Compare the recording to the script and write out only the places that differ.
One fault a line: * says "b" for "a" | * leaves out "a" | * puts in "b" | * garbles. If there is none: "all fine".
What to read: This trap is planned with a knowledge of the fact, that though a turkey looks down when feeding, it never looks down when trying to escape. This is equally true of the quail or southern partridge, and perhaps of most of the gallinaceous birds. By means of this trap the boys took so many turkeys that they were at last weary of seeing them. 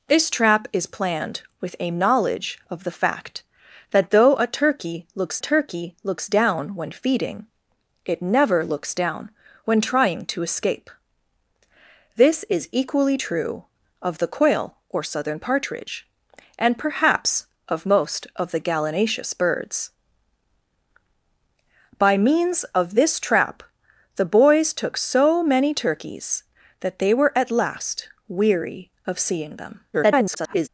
* puts in "turkey looks"
* garbles